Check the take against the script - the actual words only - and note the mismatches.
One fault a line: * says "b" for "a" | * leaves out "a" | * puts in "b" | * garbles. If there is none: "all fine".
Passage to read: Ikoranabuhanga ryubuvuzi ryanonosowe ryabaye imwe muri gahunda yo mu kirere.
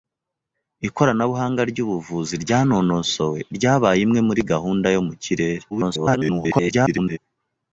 * garbles